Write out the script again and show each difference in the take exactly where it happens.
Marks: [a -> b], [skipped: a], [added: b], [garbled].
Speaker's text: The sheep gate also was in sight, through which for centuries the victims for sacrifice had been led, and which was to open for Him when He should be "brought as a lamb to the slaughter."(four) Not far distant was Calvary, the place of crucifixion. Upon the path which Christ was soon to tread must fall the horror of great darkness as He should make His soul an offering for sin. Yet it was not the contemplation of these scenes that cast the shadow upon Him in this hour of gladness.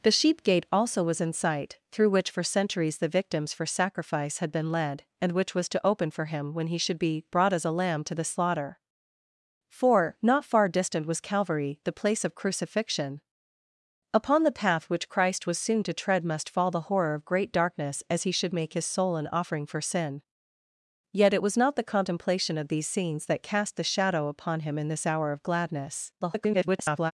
The sheep gate also was in sight, through which for centuries the victims for sacrifice had been led, and which was to open for Him when He should be "brought as a lamb to the slaughter."(four) Not far distant was Calvary, the place of crucifixion. Upon the path which Christ was soon to tread must fall the horror of great darkness as He should make His soul an offering for sin. Yet it was not the contemplation of these scenes that cast the shadow upon Him in this hour of gladness. [garbled]